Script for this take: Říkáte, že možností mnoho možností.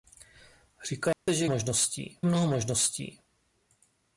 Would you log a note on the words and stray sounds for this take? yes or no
yes